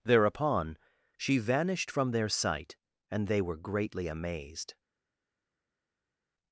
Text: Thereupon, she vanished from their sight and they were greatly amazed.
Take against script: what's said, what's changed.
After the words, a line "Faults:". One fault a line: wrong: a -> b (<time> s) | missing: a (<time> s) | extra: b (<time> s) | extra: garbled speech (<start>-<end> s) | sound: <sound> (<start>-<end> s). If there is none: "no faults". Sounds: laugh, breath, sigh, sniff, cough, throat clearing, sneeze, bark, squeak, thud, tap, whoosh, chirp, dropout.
Thereupon, she vanished from their sight and they were greatly amazed.
Faults:
no faults